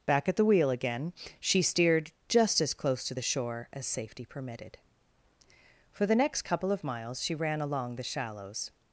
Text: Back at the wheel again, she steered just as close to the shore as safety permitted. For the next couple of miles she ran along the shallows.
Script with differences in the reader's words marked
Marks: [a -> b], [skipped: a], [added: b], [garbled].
Back at the wheel again, she steered just as close to the shore as safety permitted. For the next couple of miles she ran along the shallows.